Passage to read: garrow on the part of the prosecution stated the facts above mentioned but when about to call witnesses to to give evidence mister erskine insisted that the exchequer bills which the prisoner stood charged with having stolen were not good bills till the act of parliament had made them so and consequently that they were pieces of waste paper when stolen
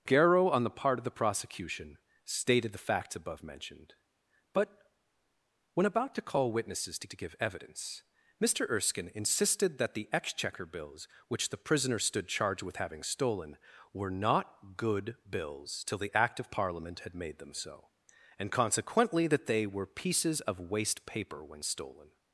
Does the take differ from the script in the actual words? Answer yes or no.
no